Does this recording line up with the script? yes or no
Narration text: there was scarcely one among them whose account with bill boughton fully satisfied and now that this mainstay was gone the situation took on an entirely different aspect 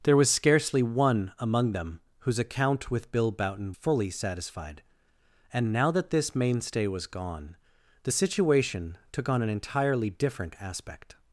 yes